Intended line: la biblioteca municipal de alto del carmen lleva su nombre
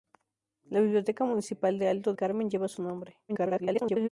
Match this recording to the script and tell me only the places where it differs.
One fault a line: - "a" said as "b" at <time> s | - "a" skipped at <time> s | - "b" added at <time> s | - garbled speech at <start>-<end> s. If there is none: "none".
- "del" skipped at 2.1 s
- garbled speech at 3.3-4.1 s